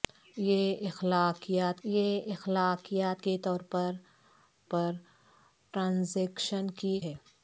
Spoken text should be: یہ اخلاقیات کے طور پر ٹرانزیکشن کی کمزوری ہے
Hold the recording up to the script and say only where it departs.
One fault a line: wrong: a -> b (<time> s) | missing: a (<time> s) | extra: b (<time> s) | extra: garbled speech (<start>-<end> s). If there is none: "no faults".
extra: یہ اخلاقیات (1.8 s)
extra: پر (4.7 s)
missing: کمزوری (7.0 s)